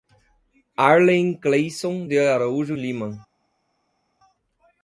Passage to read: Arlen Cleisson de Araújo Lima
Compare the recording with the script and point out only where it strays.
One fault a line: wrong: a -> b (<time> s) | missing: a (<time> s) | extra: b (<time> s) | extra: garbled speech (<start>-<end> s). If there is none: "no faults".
no faults